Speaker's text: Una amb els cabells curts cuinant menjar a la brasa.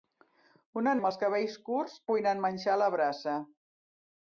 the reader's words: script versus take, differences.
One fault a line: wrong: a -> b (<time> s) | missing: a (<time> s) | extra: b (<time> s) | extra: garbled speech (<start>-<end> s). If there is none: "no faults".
no faults